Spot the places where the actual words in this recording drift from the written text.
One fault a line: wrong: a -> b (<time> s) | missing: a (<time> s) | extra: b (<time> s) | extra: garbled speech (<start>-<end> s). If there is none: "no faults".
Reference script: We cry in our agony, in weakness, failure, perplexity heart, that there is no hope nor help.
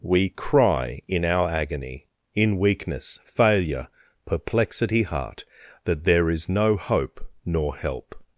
no faults